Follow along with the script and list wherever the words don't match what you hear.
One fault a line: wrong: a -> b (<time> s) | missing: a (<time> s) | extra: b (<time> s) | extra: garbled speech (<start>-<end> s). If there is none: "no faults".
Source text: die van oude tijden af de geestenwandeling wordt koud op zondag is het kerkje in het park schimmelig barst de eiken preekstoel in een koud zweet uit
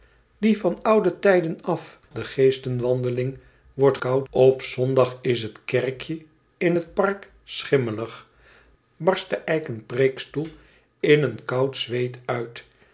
no faults